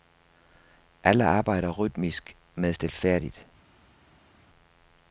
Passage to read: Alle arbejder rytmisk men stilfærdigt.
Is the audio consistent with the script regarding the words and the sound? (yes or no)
yes